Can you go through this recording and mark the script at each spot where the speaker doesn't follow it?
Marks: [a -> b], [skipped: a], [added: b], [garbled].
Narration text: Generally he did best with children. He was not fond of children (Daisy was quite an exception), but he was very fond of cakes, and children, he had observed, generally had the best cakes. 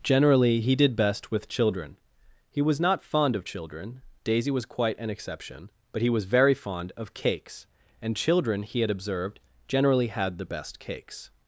Generally he did best with children. He was not fond of children (Daisy was quite an exception), but he was very fond of cakes, and children, he had observed, generally had the best cakes.